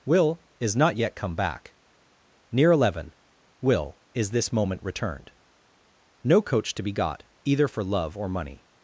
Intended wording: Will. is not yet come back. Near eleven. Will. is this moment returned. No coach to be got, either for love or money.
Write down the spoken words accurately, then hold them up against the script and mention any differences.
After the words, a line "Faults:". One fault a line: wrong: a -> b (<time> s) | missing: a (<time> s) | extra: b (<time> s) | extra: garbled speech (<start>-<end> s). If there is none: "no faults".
Will. is not yet come back. Near eleven. Will. is this moment returned. No coach to be got, either for love or money.
Faults:
no faults